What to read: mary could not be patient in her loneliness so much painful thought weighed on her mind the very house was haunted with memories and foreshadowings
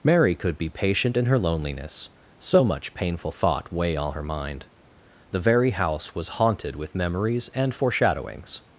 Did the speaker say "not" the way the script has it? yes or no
no